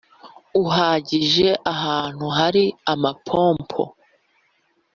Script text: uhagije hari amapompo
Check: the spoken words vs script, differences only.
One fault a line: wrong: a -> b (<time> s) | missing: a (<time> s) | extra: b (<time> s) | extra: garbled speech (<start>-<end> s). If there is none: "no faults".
extra: ahantu (1.7 s)